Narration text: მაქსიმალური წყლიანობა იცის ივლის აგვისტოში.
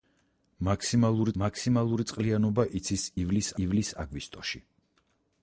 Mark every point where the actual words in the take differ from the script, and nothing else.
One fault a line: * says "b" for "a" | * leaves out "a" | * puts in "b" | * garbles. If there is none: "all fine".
* puts in "მაქსიმალური"
* puts in "ივლის"